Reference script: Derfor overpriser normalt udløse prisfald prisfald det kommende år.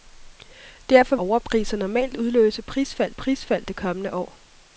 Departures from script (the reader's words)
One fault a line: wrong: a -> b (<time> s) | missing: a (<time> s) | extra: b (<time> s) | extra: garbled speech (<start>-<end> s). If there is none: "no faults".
no faults